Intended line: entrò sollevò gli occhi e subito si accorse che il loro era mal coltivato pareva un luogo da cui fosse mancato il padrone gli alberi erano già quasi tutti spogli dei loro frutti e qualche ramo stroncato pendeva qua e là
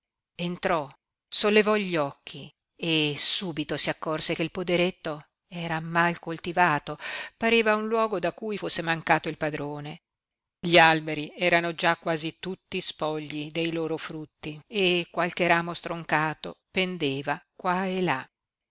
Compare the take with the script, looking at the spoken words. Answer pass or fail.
fail